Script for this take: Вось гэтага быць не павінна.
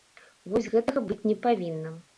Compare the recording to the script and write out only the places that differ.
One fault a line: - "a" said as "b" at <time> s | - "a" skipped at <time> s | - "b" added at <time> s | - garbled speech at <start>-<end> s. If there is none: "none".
none